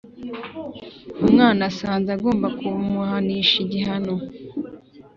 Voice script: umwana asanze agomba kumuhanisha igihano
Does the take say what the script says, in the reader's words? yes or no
yes